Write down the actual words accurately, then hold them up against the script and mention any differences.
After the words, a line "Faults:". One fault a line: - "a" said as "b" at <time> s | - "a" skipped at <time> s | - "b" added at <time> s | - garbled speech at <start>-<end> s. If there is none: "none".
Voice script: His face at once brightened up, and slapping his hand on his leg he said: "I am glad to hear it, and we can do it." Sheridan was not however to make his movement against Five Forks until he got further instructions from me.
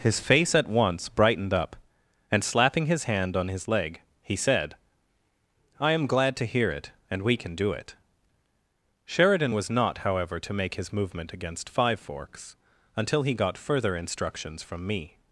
His face at once brightened up, and slapping his hand on his leg he said: "I am glad to hear it, and we can do it." Sheridan was not however to make his movement against Five Forks until he got further instructions from me.
Faults:
none